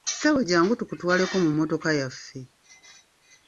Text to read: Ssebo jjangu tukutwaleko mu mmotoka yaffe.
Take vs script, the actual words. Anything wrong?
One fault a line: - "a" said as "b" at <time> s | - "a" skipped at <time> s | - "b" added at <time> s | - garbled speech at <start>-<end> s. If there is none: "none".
none